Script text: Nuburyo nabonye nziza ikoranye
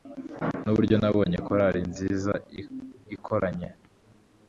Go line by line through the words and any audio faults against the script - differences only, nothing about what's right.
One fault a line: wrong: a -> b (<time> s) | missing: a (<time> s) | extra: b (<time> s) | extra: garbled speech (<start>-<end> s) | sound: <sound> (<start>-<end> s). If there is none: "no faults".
extra: korari (1.5 s)